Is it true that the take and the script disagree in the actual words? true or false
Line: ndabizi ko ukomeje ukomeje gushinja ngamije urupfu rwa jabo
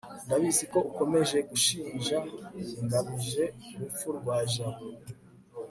true